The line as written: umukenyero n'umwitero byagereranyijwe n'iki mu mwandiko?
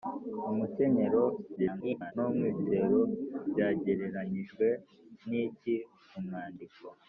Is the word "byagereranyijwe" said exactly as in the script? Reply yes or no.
yes